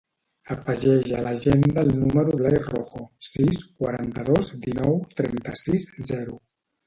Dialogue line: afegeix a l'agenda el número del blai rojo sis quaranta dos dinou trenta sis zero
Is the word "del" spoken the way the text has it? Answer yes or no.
no